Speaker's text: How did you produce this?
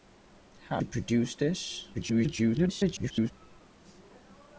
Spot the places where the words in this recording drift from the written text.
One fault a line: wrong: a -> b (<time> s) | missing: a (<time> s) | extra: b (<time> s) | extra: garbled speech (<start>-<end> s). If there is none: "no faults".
missing: did (0.8 s)
extra: garbled speech (1.9-3.3 s)